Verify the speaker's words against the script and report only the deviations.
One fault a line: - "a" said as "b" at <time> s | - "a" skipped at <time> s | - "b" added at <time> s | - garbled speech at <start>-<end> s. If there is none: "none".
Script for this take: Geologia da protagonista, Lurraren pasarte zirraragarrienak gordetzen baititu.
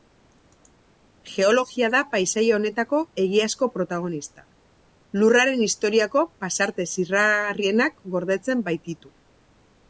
- "paisaia honetako egiazko" added at 2.1 s
- "historiako" added at 5.7 s